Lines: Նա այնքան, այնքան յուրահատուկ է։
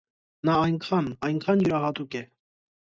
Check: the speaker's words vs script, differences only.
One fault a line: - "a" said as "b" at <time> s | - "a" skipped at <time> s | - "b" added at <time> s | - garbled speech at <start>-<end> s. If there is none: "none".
none